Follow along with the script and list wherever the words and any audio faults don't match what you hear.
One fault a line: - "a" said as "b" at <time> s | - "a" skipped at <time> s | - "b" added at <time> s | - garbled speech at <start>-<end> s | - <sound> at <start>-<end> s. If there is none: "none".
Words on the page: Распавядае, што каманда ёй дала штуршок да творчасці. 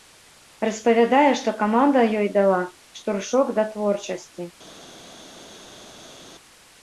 none